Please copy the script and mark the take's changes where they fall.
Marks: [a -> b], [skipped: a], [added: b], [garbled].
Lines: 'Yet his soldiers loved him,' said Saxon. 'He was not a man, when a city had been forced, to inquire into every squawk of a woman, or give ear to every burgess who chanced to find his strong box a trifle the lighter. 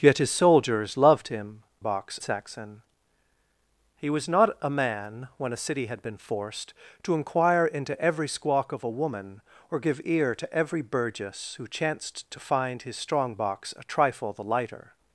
'Yet his soldiers loved him,' [said -> box] Saxon. 'He was not a man, when a city had been forced, to inquire into every squawk of a woman, or give ear to every burgess who chanced to find his strong box a trifle the lighter.